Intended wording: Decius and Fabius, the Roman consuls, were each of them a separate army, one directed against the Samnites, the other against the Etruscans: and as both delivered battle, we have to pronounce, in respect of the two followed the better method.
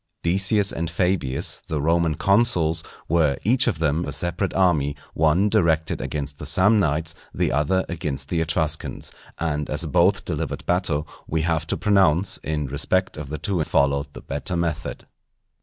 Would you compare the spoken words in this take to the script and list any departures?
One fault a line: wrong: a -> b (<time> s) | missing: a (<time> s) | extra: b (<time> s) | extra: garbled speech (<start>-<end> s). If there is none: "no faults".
no faults